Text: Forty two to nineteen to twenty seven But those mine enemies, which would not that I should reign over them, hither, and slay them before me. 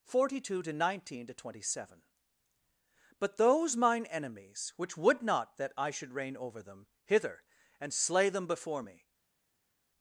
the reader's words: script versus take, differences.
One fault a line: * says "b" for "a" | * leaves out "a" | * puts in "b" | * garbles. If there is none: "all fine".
all fine